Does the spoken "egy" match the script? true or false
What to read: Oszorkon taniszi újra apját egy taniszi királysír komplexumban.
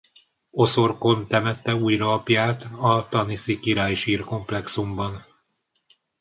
false